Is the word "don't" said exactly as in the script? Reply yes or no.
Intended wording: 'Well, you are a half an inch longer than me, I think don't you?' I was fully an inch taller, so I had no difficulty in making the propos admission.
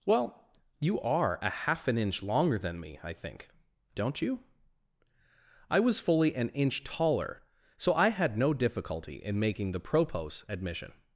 yes